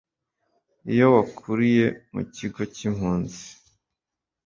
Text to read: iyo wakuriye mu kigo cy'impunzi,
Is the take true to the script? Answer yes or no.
yes